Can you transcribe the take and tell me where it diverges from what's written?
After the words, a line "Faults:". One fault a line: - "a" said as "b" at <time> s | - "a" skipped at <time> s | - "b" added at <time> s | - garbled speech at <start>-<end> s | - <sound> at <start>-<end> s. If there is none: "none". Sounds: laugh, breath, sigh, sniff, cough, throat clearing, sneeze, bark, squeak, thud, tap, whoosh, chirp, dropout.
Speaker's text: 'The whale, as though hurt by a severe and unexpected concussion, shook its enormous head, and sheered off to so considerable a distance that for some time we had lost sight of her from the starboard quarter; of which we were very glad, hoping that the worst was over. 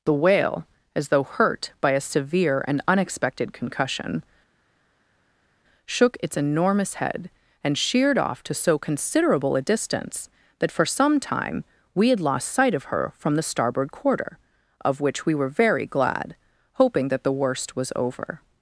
'The whale, as though hurt by a severe and unexpected concussion, shook its enormous head, and sheered off to so considerable a distance that for some time we had lost sight of her from the starboard quarter; of which we were very glad, hoping that the worst was over.
Faults:
none